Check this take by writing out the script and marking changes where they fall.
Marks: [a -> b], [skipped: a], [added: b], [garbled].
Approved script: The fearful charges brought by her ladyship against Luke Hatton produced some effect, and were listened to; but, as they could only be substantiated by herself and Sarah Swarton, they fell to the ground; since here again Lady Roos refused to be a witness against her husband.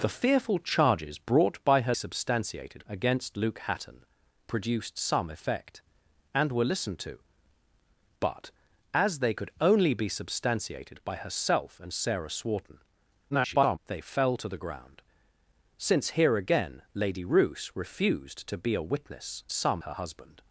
The fearful charges brought by her [ladyship -> substantiated] against Luke Hatton produced some effect, and were listened to; but, as they could only be substantiated by herself and Sarah Swarton, [garbled] they fell to the ground; since here again Lady Roos refused to be a witness [against -> some] her husband.